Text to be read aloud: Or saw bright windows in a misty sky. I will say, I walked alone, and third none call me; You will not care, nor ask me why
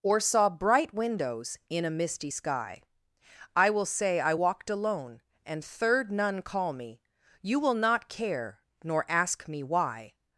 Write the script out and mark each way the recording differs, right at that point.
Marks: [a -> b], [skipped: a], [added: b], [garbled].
Or saw bright windows in a misty sky. I will say, I walked alone, and third none call me; You will not care, nor ask me why